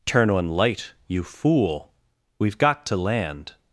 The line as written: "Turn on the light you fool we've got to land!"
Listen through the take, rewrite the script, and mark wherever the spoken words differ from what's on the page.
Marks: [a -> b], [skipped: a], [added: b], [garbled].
"Turn on [skipped: the] light you fool we've got to land!"